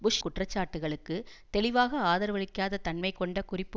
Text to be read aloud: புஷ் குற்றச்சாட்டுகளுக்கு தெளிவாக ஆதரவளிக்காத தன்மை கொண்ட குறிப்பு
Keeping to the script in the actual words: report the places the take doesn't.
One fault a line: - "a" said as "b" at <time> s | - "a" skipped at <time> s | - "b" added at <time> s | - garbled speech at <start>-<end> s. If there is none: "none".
none